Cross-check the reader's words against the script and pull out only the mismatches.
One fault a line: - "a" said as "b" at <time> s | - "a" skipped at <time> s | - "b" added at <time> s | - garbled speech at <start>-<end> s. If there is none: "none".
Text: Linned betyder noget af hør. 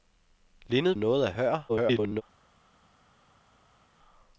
- "betyder" skipped at 0.9 s
- garbled speech at 1.7-2.2 s